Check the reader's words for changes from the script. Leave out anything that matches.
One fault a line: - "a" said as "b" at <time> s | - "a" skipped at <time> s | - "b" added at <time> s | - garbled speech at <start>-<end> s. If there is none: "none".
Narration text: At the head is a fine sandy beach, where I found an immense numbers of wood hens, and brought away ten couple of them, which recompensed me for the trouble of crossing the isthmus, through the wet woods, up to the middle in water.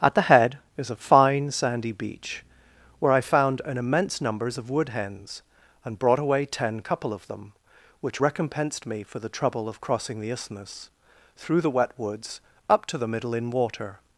none